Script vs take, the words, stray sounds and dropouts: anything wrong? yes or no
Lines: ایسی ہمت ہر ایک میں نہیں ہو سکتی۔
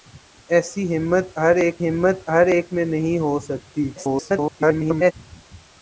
yes